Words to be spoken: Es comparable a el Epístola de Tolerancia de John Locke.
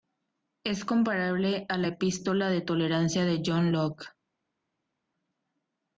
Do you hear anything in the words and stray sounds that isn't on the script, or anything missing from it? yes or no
yes